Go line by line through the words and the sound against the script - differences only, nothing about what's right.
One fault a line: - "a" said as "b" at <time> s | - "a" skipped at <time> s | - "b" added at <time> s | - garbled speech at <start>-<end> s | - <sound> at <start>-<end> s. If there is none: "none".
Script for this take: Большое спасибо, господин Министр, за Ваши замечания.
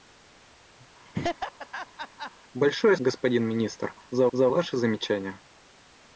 - laugh at 1.1-2.3 s
- "спасибо" skipped at 3.0 s
- "за" added at 4.3 s